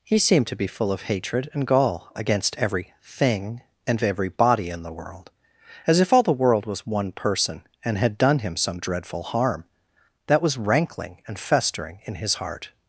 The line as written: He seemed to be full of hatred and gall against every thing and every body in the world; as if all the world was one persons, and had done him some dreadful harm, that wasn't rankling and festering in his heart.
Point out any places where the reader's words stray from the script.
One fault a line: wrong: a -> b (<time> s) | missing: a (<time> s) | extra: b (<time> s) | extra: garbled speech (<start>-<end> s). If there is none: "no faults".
wrong: persons -> person (7.1 s)
wrong: wasn't -> was (10.4 s)